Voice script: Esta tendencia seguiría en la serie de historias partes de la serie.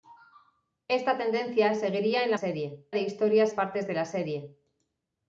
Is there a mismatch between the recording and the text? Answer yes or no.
no